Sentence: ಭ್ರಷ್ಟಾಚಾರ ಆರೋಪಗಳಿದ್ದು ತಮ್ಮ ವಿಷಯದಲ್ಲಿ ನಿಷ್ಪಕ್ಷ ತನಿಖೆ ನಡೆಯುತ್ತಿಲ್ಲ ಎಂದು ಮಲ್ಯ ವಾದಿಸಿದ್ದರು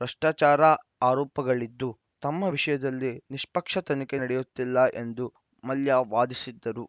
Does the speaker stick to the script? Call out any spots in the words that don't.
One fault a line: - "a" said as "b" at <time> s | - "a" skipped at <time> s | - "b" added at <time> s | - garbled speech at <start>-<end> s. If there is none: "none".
none